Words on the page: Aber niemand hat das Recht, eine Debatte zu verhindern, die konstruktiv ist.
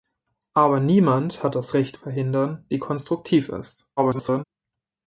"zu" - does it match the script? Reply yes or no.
no